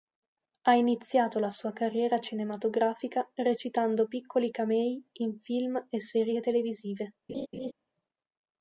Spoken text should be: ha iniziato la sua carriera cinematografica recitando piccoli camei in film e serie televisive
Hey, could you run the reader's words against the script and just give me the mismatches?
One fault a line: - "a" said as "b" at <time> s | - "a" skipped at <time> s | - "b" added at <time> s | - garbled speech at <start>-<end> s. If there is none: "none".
none